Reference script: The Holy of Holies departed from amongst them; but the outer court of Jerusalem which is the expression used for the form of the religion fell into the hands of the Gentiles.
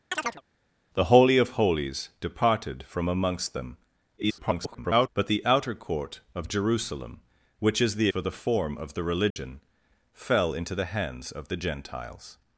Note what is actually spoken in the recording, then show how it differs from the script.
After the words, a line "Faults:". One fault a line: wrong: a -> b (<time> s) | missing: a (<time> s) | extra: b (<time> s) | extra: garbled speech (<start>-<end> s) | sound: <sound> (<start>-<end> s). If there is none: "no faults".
The Holy of Holies departed from amongst them; [garbled] but the outer court of Jerusalem which is the for the form of the religion fell into the hands of the Gentiles.
Faults:
sound: chirp (0.1-0.4 s)
extra: garbled speech (4.2-5.1 s)
missing: expression used (8.1 s)
sound: dropout (9.3-9.4 s)